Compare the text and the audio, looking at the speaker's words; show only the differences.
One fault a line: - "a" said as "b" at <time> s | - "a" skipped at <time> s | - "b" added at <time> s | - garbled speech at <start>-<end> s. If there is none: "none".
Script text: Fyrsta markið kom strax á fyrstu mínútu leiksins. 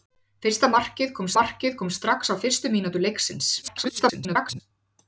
- "markið kom" added at 1.4 s
- garbled speech at 3.6-4.6 s